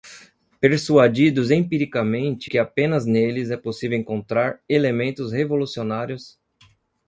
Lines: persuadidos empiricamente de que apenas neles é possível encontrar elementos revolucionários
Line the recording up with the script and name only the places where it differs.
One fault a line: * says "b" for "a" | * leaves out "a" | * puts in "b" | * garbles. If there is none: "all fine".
* leaves out "de"